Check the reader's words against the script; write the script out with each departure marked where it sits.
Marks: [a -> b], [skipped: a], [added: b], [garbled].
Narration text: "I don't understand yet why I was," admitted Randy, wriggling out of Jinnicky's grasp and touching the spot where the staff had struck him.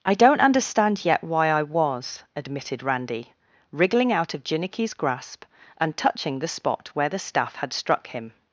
"I don't understand yet why I was," admitted Randy, wriggling out of Jinnicky's grasp and touching the spot where the staff had struck him.